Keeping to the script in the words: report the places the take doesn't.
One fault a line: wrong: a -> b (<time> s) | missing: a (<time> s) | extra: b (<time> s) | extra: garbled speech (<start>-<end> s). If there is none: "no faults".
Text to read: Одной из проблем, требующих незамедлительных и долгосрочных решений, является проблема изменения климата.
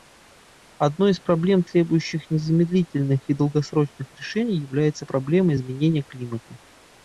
no faults